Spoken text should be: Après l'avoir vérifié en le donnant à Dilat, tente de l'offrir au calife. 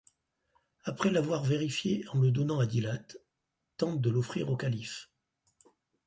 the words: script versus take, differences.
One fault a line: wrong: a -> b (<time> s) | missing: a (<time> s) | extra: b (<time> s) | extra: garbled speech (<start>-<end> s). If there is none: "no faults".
no faults